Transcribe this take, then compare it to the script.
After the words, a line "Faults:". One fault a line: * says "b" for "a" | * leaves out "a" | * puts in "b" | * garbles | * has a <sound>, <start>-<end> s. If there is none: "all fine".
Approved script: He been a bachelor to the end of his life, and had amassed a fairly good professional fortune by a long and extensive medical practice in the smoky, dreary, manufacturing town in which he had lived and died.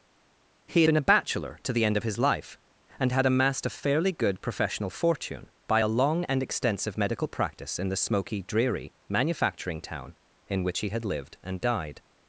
He been a bachelor to the end of his life, and had amassed a fairly good professional fortune by a long and extensive medical practice in the smoky, dreary, manufacturing town in which he had lived and died.
Faults:
all fine